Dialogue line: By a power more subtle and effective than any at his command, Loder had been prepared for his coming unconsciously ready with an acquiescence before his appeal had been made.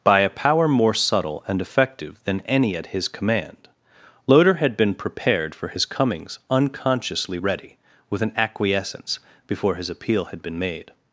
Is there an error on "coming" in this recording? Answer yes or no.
yes